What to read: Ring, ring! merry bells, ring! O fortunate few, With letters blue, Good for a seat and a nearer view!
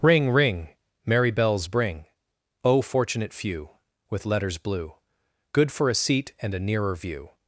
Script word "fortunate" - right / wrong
right